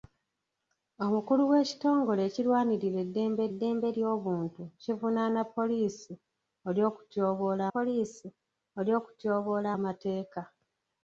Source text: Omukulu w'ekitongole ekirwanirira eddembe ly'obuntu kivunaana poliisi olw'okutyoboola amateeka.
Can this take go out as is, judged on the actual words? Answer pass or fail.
fail